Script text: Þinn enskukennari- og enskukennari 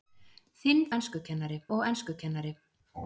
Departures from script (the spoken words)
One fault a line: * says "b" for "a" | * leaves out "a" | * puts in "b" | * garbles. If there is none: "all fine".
all fine